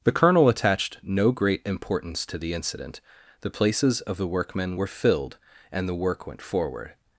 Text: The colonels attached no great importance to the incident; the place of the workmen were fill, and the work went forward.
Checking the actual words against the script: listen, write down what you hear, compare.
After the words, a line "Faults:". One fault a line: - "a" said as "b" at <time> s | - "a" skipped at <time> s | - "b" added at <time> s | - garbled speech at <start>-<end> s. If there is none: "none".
The colonel attached no great importance to the incident; the places of the workmen were filled, and the work went forward.
Faults:
- "colonels" said as "colonel" at 0.1 s
- "place" said as "places" at 3.5 s
- "fill" said as "filled" at 4.9 s